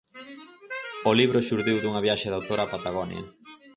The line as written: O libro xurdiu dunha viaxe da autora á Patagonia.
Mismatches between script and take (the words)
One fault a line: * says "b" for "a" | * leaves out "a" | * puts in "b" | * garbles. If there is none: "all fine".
all fine